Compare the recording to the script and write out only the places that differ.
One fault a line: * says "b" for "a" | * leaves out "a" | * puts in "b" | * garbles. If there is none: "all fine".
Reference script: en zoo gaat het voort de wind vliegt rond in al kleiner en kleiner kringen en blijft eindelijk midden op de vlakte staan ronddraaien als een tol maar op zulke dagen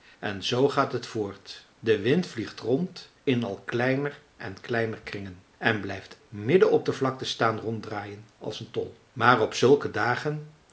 * leaves out "eindelijk"